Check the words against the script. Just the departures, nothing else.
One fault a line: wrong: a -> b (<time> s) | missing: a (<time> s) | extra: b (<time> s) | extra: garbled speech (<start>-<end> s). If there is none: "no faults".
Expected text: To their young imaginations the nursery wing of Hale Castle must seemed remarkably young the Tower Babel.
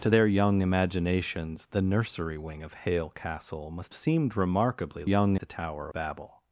no faults